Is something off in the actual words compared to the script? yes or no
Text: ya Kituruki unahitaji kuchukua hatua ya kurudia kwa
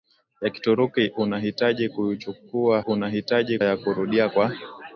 yes